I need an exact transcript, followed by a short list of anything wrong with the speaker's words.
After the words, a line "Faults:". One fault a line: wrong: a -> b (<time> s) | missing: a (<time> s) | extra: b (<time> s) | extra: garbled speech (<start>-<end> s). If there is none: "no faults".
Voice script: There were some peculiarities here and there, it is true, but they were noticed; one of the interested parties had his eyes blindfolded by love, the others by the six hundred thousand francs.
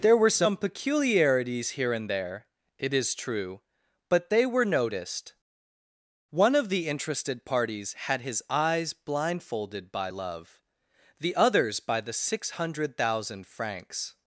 There were some peculiarities here and there, it is true, but they were noticed; one of the interested parties had his eyes blindfolded by love, the others by the six hundred thousand francs.
Faults:
no faults